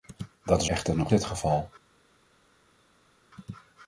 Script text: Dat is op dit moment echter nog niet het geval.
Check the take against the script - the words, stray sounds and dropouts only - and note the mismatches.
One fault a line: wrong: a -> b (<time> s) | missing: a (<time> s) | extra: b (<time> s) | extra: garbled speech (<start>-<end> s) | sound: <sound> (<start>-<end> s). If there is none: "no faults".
missing: op dit moment (0.7 s)
missing: niet (1.1 s)